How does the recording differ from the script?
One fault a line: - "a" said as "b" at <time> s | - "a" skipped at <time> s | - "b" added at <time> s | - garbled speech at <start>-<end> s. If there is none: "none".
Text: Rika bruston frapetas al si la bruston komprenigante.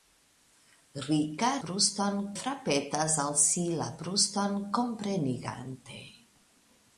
none